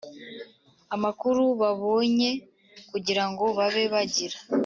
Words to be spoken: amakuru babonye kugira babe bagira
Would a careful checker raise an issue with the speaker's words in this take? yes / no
yes